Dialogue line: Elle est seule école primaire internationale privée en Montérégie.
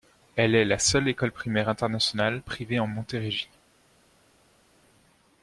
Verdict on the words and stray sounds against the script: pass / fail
fail